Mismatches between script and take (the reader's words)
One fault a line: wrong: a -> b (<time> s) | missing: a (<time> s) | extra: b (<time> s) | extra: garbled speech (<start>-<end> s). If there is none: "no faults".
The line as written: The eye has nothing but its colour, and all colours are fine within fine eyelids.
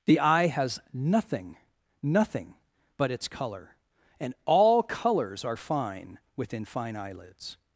extra: nothing (2.0 s)